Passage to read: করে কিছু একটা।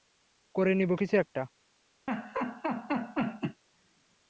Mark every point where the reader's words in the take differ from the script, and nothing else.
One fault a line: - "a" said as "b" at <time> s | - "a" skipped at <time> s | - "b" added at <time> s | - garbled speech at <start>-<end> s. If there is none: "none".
- "নিব" added at 0.8 s